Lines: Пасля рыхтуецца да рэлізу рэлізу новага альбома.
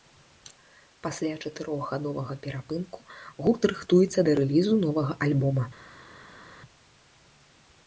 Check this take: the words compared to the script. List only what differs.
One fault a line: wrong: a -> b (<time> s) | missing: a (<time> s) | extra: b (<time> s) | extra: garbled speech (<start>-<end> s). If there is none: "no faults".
extra: чатырохгадовага перапынку гурт (1.4 s)
missing: рэлізу (4.7 s)